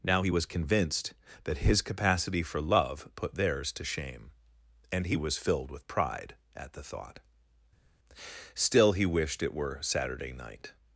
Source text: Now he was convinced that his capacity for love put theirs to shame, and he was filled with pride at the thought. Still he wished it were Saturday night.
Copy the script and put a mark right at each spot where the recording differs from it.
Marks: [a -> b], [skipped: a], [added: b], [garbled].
Now he was convinced that his capacity for love put theirs to shame, and he was filled with pride at the thought. Still he wished it were Saturday night.